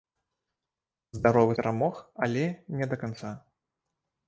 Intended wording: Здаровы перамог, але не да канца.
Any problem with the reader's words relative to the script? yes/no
no